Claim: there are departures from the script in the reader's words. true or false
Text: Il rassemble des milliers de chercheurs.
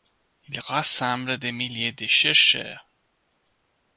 false